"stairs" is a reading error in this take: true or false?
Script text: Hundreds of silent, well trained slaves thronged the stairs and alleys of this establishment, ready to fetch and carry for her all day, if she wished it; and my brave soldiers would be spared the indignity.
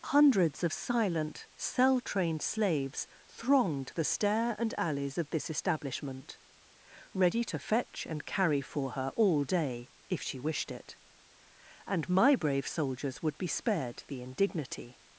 true